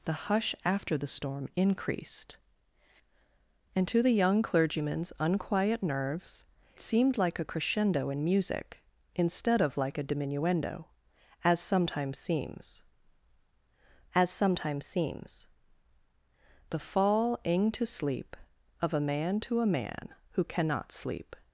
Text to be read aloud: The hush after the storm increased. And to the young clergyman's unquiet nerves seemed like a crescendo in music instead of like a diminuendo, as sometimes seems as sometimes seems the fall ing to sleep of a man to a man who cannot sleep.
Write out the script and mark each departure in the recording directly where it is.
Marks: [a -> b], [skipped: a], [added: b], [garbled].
The hush after the storm increased. And to the young clergyman's unquiet nerves seemed like a crescendo in music instead of like a diminuendo, as sometimes seems as sometimes seems the fall ing to sleep of a man to a man who cannot sleep.